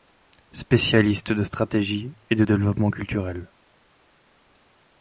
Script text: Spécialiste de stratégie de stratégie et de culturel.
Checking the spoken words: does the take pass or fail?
fail